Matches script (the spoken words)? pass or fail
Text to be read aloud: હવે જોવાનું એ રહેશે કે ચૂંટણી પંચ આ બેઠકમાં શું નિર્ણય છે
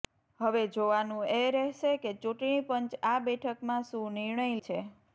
pass